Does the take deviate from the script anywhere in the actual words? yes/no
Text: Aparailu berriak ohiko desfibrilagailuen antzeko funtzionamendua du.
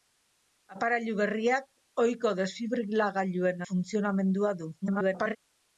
yes